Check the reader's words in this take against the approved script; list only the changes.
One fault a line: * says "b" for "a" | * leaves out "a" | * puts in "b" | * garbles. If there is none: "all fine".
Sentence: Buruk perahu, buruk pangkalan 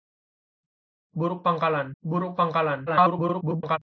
* says "pangkalan" for "perahu"
* garbles